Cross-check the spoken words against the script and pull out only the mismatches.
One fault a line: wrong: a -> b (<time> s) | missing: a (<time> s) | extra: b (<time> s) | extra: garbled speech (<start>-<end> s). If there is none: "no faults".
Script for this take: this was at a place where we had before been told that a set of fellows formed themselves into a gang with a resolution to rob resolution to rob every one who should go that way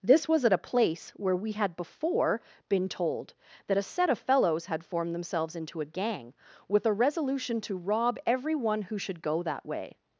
extra: had (4.7 s)
missing: resolution to rob (8.2 s)